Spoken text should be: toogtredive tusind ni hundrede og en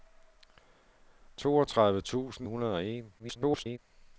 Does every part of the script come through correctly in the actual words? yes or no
no